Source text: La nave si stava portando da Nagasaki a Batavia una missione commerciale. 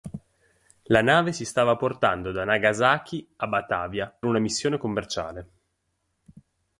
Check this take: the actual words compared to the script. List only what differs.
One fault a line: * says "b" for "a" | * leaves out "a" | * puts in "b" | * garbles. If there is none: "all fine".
all fine